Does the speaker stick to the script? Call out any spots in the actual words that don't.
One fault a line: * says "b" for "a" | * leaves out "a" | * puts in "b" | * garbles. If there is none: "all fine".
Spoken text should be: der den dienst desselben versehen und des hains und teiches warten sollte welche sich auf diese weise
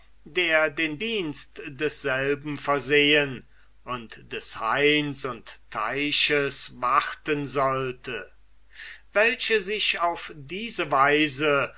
all fine